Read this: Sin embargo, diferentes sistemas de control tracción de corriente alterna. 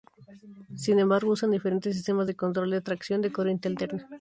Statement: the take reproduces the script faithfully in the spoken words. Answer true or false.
false